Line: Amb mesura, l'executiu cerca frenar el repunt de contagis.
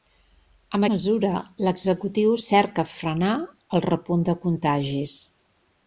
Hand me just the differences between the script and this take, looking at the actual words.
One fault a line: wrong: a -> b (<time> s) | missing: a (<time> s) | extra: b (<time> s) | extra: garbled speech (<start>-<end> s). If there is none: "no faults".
no faults